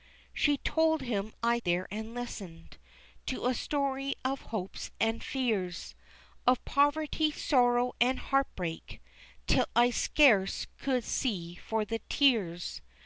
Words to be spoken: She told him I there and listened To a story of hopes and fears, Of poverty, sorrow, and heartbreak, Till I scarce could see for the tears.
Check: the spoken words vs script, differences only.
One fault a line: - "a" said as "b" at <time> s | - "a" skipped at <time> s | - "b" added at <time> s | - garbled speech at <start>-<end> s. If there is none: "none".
none